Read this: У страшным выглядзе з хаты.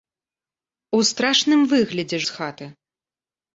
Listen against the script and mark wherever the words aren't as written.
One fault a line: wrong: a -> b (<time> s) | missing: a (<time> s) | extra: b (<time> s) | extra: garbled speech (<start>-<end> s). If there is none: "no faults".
no faults